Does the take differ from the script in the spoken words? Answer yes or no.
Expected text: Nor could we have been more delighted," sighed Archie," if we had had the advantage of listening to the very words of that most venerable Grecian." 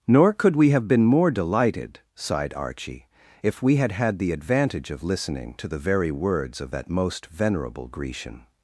no